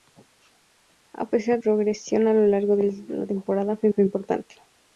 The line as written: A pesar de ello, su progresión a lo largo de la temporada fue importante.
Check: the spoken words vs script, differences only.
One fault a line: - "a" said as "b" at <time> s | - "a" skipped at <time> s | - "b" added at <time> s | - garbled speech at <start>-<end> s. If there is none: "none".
- "de ello su" skipped at 1.6 s
- "fue" added at 3.9 s